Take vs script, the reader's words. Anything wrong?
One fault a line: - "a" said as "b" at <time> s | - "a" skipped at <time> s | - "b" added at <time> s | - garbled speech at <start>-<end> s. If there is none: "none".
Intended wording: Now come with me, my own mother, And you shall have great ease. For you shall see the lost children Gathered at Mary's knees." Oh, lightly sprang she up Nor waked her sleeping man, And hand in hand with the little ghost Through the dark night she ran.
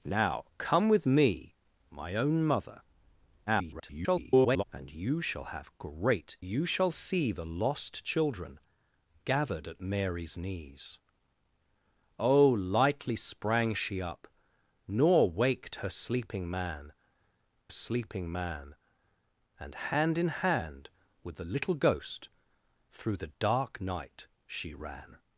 - garbled speech at 3.5-4.6 s
- "ease For" skipped at 6.4 s
- "sleeping man" added at 17.7 s